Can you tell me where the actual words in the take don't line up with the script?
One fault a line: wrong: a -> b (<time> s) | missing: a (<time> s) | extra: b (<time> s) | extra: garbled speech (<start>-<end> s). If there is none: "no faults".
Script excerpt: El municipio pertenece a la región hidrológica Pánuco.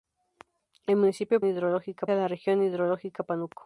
wrong: pertenece -> hidrológica (1.5 s)